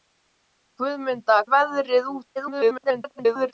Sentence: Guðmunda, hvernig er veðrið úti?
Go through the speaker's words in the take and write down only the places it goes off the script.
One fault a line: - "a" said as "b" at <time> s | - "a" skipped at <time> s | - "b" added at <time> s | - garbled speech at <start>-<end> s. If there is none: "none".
- "hvernig" skipped at 1.4 s
- garbled speech at 2.4-3.5 s